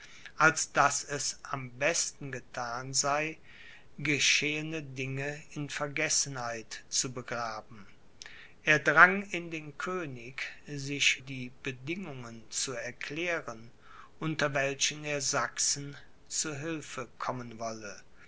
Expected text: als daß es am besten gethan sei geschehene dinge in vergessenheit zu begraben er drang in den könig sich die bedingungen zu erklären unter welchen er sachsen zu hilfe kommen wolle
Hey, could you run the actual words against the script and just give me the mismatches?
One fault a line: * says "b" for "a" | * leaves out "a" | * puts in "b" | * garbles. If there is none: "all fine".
all fine